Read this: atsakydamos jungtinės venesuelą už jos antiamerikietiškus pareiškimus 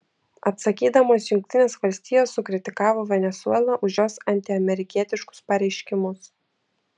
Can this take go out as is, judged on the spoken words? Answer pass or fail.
fail